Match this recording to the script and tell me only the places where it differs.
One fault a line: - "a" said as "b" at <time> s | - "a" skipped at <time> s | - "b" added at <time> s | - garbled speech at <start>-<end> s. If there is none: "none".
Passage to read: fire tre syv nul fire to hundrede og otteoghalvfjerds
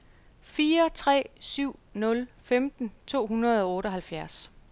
- "fire" said as "femten" at 2.4 s